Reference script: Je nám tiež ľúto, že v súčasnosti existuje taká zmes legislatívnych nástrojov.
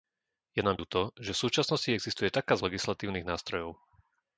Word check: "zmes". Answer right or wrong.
wrong